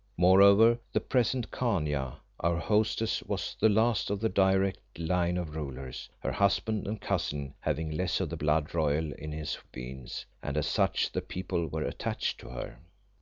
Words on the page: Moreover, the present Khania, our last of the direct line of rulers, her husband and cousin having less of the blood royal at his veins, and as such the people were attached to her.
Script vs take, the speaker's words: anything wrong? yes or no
yes